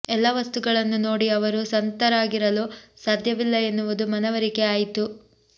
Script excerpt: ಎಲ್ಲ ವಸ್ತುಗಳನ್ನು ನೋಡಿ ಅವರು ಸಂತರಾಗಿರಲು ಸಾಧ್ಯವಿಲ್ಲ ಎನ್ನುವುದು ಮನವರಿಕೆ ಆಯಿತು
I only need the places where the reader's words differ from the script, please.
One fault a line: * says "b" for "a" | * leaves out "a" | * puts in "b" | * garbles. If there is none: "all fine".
all fine